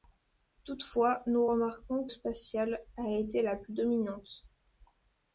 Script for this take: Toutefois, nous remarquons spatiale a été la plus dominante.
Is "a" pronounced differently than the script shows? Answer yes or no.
no